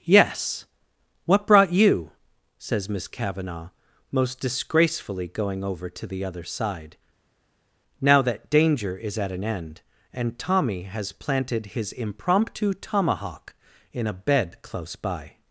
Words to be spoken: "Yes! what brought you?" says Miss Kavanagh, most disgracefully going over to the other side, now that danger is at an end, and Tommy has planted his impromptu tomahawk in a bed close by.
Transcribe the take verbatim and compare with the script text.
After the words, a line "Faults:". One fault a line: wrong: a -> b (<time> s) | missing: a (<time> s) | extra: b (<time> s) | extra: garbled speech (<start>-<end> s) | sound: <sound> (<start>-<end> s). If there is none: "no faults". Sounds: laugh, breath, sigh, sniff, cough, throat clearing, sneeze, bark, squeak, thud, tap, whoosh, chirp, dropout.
"Yes! what brought you?" says Miss Kavanagh, most disgracefully going over to the other side, now that danger is at an end, and Tommy has planted his impromptu tomahawk in a bed close by.
Faults:
no faults